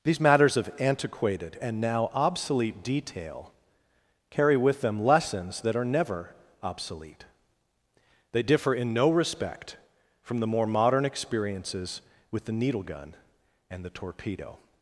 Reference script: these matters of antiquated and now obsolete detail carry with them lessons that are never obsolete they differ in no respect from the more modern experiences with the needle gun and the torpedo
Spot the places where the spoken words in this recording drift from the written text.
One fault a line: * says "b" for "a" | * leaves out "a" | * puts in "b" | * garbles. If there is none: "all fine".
all fine